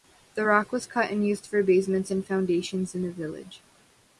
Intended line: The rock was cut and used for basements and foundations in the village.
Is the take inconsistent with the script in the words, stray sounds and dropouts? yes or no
no